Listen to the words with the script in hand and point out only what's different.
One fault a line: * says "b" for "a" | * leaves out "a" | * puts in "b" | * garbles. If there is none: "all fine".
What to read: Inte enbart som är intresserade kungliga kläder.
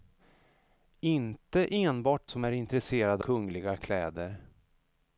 all fine